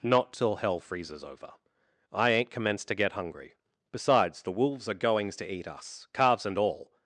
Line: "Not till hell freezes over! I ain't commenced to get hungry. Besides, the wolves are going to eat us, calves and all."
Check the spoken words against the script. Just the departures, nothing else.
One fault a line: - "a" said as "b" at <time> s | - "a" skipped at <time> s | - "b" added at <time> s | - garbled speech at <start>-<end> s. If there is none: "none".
- "going" said as "goings" at 4.9 s